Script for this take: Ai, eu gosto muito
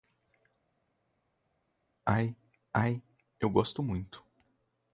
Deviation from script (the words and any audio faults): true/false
true